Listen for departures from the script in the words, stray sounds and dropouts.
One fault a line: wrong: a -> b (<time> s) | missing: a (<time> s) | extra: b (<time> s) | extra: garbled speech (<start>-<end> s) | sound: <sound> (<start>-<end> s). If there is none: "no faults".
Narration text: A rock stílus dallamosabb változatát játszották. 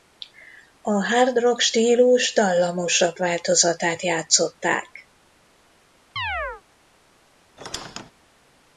extra: hard (1.1 s)
sound: chirp (6.2-6.6 s)
sound: squeak (7.6-8.1 s)